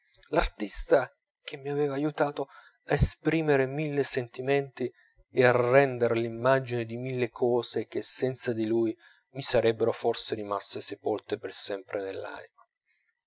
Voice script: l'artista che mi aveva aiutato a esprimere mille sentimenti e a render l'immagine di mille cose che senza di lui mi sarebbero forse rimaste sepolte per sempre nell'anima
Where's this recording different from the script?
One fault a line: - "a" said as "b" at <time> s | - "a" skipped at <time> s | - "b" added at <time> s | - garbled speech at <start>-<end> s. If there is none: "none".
none